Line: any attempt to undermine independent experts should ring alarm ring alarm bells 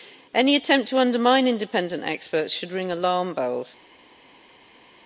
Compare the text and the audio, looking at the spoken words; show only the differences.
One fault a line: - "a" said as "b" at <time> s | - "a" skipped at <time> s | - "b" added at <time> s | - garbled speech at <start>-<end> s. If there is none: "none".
- "ring alarm" skipped at 3.4 s